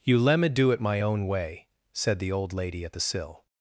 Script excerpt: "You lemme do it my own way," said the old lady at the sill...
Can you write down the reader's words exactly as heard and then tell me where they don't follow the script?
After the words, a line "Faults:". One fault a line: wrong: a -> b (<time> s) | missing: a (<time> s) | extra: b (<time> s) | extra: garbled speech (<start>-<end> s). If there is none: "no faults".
"You lemme do it my own way," said the old lady at the sill...
Faults:
no faults